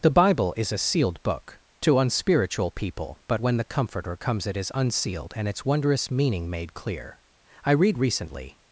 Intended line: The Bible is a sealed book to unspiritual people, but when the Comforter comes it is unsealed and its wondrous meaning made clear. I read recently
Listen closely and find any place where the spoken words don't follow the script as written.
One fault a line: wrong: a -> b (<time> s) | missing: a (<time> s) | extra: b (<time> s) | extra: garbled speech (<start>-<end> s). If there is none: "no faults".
no faults